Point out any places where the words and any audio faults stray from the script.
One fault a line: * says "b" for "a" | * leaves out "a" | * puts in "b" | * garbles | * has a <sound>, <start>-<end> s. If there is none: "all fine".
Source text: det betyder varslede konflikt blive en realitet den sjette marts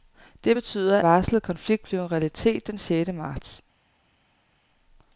all fine